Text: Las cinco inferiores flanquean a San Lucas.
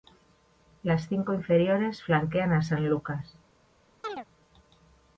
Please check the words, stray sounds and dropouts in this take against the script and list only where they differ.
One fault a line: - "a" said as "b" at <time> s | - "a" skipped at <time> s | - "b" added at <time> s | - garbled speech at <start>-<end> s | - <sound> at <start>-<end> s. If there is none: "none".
- chirp at 4.0-4.3 s